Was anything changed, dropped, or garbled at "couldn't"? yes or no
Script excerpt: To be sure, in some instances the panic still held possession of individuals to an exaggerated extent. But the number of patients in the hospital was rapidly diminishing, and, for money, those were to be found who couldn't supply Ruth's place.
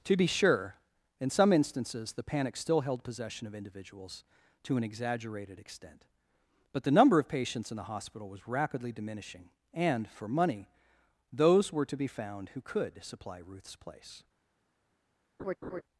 yes